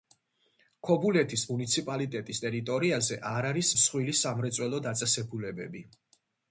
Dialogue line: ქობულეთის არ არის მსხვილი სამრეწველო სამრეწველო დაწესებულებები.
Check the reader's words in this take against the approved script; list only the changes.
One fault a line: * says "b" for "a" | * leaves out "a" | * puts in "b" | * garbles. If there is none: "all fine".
* puts in "მუნიციპალიტეტის ტერიტორიაზე"
* leaves out "სამრეწველო"